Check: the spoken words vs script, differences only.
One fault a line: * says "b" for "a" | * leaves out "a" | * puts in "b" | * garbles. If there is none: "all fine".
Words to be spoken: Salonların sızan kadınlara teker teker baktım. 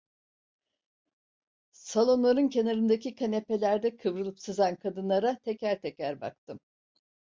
* puts in "kenarındaki kanepelerde kıvrılıp"